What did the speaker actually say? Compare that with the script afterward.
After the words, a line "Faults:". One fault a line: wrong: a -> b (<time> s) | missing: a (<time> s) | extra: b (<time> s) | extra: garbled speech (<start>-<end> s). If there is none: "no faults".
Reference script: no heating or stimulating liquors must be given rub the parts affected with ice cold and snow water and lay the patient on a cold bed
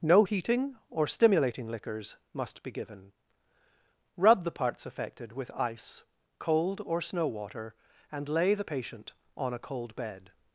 no heating or stimulating liquors must be given rub the parts affected with ice cold or snow water and lay the patient on a cold bed
Faults:
wrong: and -> or (6.9 s)